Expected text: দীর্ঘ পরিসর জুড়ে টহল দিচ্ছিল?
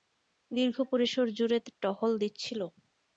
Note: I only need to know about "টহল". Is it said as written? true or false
true